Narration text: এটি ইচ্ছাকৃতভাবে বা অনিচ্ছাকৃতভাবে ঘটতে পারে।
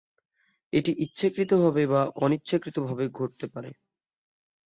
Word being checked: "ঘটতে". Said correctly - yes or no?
yes